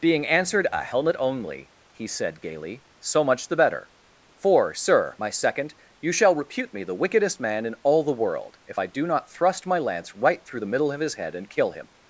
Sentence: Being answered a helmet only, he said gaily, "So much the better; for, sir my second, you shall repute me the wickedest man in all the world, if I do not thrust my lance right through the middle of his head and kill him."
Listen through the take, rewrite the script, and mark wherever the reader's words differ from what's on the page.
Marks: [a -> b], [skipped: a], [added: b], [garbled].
Being answered a helmet only, he said gaily, "So much the better; for, sir my second, you shall repute me the wickedest man in all the world, if I do not thrust my lance right through the middle of his head and kill him."